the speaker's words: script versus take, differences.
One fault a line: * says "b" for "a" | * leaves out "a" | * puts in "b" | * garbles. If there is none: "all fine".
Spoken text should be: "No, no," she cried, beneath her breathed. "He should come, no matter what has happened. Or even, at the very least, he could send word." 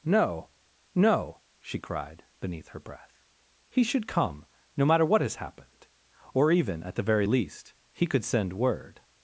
* says "breath" for "breathed"